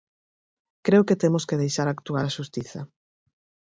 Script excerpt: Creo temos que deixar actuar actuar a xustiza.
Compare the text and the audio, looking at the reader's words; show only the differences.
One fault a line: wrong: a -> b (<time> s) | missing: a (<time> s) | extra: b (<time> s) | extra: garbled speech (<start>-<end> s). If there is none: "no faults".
extra: que (1.1 s)
missing: actuar (2.2 s)